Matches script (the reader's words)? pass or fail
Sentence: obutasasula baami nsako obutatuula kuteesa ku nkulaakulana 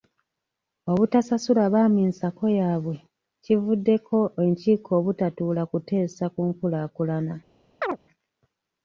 fail